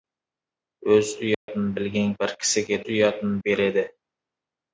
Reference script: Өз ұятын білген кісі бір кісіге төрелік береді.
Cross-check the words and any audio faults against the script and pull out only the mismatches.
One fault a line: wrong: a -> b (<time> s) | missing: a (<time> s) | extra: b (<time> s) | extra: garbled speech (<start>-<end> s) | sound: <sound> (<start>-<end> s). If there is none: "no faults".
sound: dropout (1.3-1.5 s)
missing: кісі (2.1 s)
wrong: төрелік -> ұятын (2.9 s)